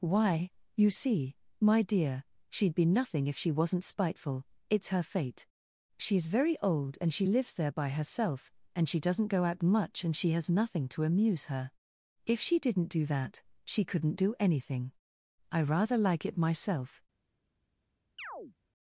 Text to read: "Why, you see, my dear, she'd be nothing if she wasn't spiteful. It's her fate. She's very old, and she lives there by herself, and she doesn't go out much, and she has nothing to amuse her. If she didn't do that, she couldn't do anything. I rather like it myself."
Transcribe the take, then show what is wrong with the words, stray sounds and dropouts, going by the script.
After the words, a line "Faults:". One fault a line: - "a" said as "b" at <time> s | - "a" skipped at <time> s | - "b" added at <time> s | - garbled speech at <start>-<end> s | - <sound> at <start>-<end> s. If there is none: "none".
"Why, you see, my dear, she'd be nothing if she wasn't spiteful. It's her fate. She's very old, and she lives there by herself, and she doesn't go out much, and she has nothing to amuse her. If she didn't do that, she couldn't do anything. I rather like it myself."
Faults:
- chirp at 18.2-18.6 s